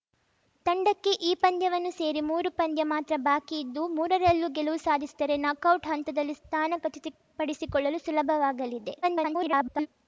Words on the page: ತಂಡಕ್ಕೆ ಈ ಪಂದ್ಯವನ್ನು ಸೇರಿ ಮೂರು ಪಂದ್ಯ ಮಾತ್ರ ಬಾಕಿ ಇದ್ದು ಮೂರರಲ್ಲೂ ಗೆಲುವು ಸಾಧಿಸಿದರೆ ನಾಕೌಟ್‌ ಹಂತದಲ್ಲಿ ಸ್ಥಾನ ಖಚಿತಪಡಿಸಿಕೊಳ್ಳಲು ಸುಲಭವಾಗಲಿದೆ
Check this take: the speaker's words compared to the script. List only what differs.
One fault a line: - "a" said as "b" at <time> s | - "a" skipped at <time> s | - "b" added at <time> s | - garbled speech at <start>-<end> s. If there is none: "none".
- garbled speech at 9.0-9.9 s